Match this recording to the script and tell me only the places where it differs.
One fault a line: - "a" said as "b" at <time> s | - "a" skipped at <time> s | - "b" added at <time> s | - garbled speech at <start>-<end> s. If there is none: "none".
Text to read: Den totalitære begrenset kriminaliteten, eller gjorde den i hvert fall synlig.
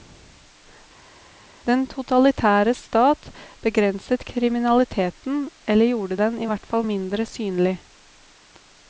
- "stat" added at 2.8 s
- "mindre" added at 6.9 s